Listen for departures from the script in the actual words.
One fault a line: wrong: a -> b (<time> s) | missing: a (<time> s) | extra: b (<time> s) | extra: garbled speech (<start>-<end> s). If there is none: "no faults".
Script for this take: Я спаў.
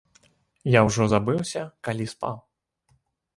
extra: ўжо забыўся калі (0.8 s)